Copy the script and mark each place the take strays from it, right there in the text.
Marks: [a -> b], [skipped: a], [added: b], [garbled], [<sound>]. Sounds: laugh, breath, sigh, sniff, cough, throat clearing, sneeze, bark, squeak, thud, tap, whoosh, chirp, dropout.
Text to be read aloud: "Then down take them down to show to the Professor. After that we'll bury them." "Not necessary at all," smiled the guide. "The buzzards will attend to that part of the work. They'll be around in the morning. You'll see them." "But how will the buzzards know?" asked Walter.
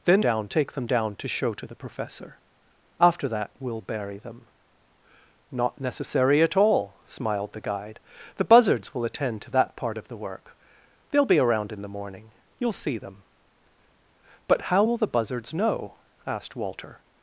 "Then down take them down to show to the Professor. After that we'll bury them." "Not necessary at all," smiled the guide. "The buzzards will attend to that part of the work. They'll be around in the morning. You'll see them." "But how will the buzzards know?" asked Walter.